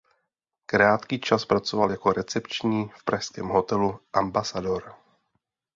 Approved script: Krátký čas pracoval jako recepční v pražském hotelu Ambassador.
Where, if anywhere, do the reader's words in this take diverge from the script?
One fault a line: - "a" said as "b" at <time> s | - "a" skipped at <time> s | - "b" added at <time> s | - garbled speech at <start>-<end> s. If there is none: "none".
none